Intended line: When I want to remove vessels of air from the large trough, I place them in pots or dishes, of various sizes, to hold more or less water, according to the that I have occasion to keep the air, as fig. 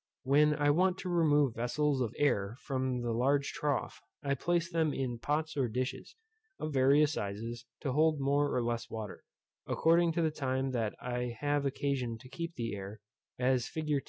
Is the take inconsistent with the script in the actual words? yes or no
yes